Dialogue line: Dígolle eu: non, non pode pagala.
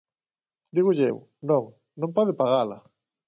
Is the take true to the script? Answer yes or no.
yes